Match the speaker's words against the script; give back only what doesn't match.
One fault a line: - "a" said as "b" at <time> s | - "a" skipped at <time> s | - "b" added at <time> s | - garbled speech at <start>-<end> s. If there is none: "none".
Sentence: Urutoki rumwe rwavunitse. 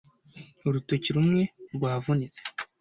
none